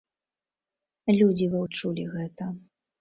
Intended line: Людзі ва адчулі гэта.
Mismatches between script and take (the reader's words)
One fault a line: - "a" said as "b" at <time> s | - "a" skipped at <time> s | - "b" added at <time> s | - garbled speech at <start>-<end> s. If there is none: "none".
none